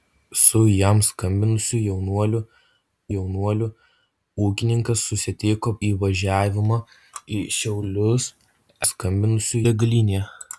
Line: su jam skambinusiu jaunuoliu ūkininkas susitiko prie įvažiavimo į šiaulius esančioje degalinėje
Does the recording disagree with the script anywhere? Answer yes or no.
yes